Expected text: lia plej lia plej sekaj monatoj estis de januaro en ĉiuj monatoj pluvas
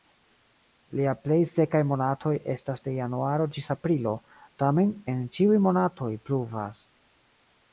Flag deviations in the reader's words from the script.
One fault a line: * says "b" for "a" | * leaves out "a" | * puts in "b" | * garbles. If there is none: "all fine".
* leaves out "lia plej"
* says "estas" for "estis"
* puts in "ĝis aprilo tamen"